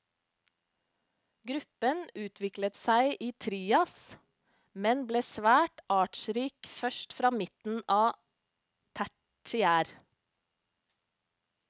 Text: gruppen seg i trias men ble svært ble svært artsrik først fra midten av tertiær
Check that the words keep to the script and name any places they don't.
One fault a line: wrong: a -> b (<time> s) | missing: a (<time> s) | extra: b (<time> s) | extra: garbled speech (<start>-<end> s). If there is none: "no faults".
extra: utviklet (2.1 s)
missing: ble svært (5.8 s)